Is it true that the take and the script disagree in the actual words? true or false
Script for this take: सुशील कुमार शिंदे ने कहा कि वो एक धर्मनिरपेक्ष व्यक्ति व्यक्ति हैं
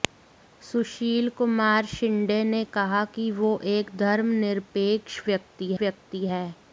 false